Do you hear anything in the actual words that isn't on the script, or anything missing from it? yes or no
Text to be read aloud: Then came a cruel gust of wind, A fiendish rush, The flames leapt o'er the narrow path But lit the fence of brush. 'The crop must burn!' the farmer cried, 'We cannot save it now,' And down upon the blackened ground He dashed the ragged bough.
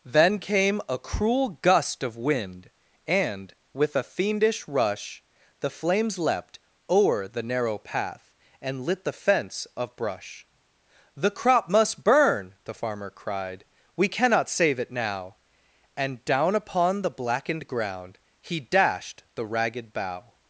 yes